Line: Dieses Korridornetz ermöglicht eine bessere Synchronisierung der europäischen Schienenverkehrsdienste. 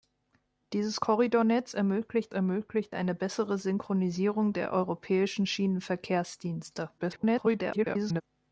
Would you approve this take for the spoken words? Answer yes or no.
no